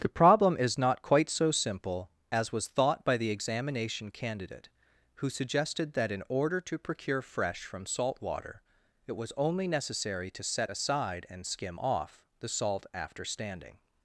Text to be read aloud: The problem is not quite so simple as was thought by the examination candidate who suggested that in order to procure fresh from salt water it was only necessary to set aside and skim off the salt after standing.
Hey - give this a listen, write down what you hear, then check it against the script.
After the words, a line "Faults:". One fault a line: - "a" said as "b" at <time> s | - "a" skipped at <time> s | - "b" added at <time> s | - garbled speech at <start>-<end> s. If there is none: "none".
The problem is not quite so simple as was thought by the examination candidate who suggested that in order to procure fresh from salt water it was only necessary to set aside and skim off the salt after standing.
Faults:
none